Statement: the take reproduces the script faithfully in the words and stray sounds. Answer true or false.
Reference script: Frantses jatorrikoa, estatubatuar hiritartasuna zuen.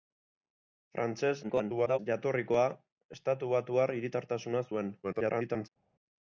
false